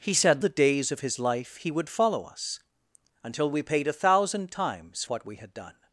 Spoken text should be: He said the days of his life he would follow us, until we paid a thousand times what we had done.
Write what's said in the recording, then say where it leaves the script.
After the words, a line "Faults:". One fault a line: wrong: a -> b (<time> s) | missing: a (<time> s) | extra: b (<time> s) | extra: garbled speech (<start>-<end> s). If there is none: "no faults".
He said the days of his life he would follow us, until we paid a thousand times what we had done.
Faults:
no faults